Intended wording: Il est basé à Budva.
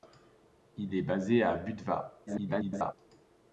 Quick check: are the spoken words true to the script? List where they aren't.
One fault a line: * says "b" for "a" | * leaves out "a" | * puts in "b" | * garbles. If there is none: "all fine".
* garbles